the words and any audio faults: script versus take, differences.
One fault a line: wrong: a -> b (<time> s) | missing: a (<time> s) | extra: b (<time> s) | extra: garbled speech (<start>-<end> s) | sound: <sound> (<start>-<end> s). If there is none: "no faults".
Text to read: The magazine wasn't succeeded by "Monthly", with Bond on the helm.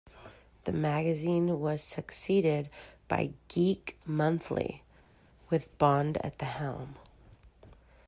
wrong: wasn't -> was (1.6 s)
extra: Geek (3.5 s)
wrong: on -> at (6.3 s)